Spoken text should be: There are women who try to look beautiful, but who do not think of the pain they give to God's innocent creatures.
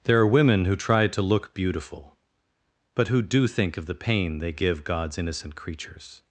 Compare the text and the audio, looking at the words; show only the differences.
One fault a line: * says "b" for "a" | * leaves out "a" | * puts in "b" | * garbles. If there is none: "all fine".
* leaves out "not"
* leaves out "to"